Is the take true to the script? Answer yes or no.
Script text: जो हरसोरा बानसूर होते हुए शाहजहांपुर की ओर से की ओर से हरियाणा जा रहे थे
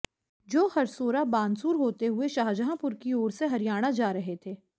no